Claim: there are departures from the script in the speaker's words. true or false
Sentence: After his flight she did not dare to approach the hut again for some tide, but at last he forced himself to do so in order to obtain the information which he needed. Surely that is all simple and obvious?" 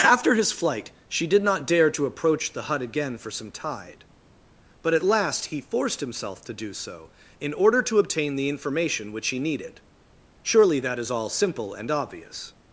false